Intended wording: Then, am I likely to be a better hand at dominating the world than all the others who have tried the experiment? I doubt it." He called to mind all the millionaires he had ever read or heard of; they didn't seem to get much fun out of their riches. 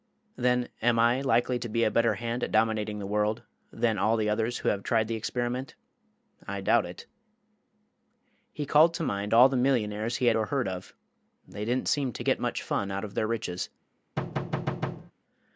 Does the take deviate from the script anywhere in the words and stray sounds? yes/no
yes